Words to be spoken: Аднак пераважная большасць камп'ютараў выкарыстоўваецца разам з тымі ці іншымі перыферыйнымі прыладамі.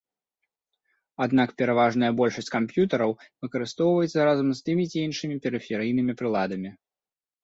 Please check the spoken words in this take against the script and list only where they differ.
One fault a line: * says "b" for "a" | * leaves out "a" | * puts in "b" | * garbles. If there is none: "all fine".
all fine